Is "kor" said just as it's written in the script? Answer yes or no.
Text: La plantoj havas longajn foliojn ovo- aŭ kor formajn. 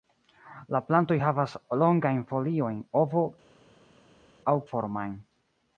no